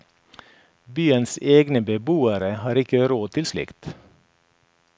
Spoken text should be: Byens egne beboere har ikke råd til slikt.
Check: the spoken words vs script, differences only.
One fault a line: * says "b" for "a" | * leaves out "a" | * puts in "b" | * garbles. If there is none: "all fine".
all fine